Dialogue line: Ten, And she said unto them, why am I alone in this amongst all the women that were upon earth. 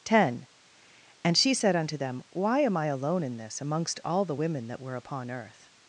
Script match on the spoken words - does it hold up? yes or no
yes